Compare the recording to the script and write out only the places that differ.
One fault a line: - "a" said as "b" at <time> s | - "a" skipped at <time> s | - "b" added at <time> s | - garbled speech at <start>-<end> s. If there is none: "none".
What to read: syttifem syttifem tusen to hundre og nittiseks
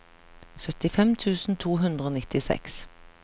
- "syttifem" skipped at 1.1 s